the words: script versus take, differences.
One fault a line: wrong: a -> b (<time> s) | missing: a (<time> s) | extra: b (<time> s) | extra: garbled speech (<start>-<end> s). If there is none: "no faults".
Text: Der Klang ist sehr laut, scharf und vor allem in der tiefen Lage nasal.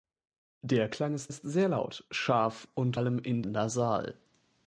extra: ist (1.3 s)
missing: vor (3.0 s)
missing: der tiefen Lage (3.4 s)